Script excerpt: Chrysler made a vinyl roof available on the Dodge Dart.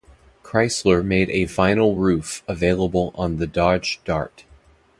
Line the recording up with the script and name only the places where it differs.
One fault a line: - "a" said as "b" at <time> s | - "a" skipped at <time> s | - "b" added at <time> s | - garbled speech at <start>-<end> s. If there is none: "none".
none